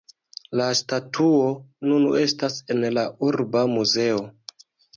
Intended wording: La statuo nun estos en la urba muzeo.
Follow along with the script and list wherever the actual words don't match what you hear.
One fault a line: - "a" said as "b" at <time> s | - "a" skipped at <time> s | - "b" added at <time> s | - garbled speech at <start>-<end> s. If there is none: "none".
- "estos" said as "estas" at 2.2 s